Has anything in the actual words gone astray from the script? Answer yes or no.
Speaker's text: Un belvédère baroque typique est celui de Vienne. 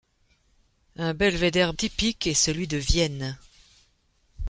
yes